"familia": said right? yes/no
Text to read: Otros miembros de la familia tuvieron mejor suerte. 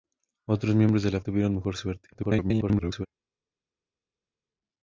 no